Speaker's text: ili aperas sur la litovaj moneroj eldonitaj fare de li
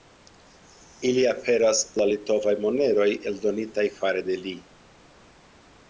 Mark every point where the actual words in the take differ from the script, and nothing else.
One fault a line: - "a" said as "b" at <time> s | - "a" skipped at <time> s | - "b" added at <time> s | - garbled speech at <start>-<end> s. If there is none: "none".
- "sur" skipped at 1.8 s